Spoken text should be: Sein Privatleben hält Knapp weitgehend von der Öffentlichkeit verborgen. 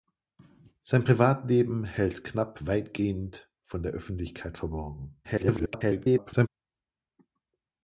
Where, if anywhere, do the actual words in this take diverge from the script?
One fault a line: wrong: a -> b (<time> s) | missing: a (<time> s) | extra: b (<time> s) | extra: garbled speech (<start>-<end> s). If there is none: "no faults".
extra: garbled speech (5.2-6.5 s)